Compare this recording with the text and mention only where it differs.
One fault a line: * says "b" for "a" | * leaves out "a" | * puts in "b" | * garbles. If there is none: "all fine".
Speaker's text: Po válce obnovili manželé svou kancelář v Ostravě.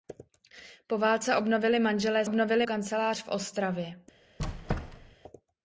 * says "obnovili" for "svou"